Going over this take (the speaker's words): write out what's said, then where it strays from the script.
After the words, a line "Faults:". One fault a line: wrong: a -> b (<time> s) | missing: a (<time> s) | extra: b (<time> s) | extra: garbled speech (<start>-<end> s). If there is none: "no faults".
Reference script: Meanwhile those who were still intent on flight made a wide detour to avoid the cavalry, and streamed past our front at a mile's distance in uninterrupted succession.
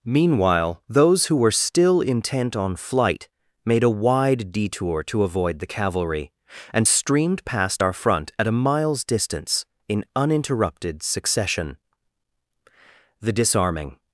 Meanwhile those who were still intent on flight made a wide detour to avoid the cavalry, and streamed past our front at a mile's distance in uninterrupted succession. The disarming
Faults:
extra: The disarming (13.2 s)